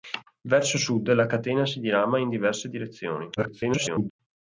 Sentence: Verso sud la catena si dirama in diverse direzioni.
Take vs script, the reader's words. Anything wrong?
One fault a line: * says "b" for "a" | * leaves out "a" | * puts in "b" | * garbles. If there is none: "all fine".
* garbles